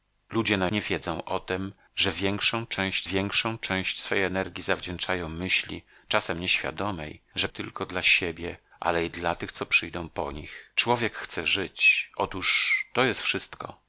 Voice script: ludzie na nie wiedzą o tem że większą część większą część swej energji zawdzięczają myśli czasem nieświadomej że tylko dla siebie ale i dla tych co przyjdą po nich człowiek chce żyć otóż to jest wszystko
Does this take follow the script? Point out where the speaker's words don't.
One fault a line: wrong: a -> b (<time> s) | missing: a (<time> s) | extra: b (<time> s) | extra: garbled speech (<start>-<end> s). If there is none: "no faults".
no faults